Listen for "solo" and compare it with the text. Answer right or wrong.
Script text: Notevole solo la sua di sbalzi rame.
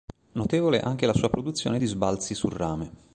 wrong